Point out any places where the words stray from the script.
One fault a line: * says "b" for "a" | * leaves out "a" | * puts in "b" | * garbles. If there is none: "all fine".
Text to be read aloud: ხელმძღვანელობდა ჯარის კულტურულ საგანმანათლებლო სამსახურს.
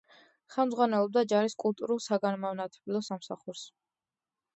all fine